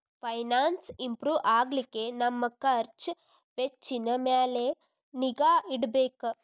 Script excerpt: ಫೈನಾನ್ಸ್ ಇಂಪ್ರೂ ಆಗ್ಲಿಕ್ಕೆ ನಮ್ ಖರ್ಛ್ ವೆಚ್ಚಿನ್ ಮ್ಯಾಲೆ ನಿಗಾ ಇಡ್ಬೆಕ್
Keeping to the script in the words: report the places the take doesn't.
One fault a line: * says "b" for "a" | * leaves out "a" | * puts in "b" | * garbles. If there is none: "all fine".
all fine